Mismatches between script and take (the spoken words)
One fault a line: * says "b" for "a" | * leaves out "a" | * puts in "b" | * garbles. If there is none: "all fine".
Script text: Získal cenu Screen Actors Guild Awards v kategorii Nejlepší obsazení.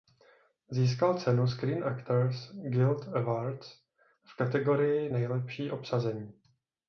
all fine